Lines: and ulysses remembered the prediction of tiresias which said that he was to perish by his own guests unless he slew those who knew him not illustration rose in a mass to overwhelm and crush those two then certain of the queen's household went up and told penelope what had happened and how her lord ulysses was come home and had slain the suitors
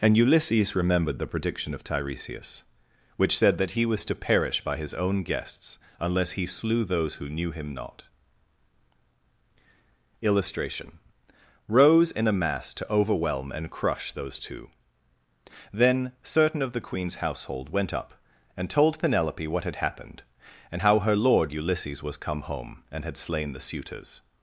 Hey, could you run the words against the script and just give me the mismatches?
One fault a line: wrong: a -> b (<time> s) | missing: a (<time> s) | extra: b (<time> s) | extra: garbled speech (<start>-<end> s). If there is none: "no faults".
no faults